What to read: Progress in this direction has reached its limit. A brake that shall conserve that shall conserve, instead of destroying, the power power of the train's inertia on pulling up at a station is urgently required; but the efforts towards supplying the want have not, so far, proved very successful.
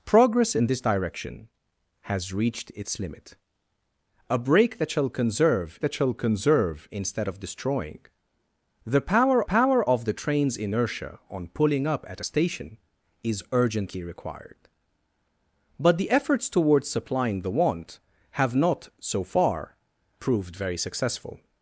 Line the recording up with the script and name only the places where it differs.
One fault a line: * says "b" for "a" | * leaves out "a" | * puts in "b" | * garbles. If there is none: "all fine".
all fine